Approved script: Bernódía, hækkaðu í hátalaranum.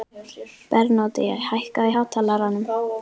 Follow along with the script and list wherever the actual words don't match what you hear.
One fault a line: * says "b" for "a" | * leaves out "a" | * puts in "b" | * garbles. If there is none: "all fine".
all fine